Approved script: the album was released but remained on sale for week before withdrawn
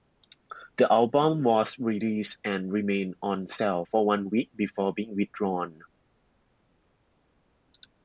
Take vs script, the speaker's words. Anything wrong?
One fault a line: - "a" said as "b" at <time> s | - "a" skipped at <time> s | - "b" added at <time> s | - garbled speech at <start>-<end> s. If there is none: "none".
- "but" said as "and" at 2.4 s
- "one" added at 4.1 s
- "being" added at 4.9 s